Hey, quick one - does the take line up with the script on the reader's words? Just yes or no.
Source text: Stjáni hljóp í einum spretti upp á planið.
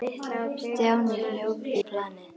no